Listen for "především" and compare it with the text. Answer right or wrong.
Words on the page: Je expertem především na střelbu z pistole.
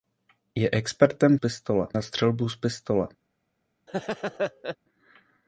wrong